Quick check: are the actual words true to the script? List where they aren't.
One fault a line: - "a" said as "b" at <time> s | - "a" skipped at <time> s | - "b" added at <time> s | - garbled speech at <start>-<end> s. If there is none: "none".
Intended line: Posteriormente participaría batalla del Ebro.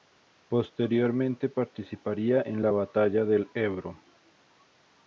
- "en la" added at 2.4 s